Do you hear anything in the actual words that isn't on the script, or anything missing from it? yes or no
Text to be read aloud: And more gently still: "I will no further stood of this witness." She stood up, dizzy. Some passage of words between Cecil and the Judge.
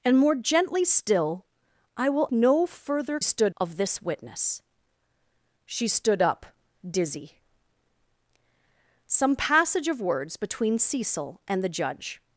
no